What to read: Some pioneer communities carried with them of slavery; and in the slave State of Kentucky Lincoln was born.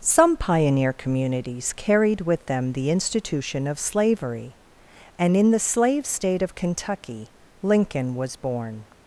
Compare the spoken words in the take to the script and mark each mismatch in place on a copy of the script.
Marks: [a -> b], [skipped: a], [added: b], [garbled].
Some pioneer communities carried with them [added: the institution] of slavery; and in the slave State of Kentucky Lincoln was born.